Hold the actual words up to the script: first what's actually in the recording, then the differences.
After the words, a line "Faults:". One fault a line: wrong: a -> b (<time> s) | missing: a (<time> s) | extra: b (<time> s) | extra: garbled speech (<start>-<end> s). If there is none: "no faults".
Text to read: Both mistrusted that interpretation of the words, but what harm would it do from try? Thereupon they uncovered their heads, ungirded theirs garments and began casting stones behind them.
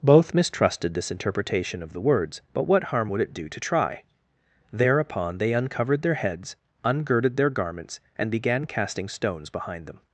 Both mistrusted this interpretation of the words, but what harm would it do to try? Thereupon they uncovered their heads, ungirded their garments and began casting stones behind them.
Faults:
wrong: that -> this (0.9 s)
wrong: from -> to (3.5 s)
wrong: theirs -> their (7.4 s)